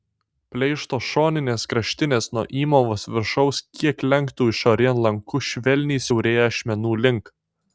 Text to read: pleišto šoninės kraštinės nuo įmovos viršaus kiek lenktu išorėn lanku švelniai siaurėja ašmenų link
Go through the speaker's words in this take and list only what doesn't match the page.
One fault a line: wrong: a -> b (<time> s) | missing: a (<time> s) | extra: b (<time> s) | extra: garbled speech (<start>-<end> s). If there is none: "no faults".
no faults